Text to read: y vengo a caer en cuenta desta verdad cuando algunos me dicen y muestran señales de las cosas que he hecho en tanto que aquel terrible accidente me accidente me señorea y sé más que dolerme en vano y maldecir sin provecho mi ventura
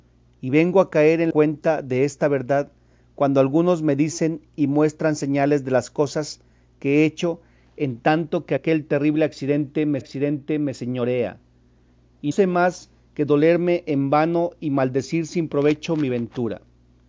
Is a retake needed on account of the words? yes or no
no